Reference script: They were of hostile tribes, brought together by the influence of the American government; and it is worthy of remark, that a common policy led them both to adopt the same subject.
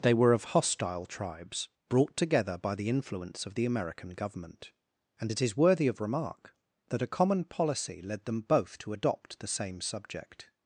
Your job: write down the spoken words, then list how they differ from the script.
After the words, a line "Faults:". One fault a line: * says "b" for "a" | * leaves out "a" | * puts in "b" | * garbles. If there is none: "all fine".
They were of hostile tribes, brought together by the influence of the American government; and it is worthy of remark, that a common policy led them both to adopt the same subject.
Faults:
all fine